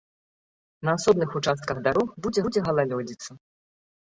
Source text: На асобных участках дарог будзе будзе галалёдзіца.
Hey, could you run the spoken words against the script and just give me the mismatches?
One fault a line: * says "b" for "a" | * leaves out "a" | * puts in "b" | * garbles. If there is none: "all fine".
all fine